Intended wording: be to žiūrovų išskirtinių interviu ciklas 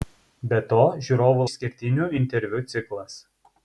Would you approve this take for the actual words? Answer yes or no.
yes